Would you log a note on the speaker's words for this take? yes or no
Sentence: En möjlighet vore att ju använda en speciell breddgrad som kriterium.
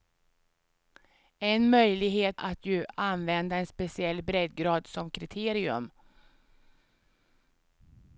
yes